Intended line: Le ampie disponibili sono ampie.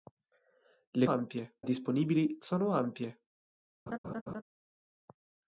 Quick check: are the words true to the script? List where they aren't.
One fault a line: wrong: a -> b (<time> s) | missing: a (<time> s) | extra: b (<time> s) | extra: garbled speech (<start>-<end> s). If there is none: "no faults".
no faults